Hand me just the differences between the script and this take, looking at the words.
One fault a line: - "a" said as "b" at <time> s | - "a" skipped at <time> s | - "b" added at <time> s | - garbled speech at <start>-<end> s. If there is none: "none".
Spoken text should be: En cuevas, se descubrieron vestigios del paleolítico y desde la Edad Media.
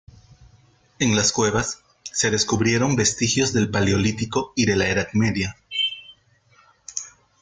- "las" added at 1.1 s
- "desde" said as "de" at 4.6 s